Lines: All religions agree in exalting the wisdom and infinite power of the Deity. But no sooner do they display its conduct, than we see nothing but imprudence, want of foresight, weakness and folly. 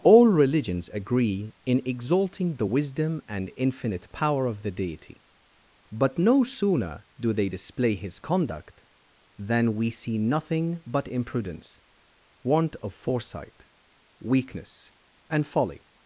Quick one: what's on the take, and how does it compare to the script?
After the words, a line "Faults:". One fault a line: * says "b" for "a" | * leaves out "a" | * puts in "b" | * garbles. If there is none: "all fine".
All religions agree in exalting the wisdom and infinite power of the Deity. But no sooner do they display his conduct, than we see nothing but imprudence, want of foresight, weakness and folly.
Faults:
* says "his" for "its"